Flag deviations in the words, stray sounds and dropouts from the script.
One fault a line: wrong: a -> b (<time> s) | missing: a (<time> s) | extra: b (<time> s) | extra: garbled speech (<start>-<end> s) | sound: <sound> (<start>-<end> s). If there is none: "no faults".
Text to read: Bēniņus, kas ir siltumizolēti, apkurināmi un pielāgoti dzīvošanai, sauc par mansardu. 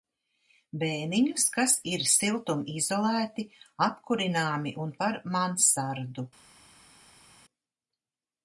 missing: pielāgoti dzīvošanai sauc (4.9 s)